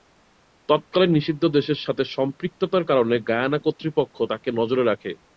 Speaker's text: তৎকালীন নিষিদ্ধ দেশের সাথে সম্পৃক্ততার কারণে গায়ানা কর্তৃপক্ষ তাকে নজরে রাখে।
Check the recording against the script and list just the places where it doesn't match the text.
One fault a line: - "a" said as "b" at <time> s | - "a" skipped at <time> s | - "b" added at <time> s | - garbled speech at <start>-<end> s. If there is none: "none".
none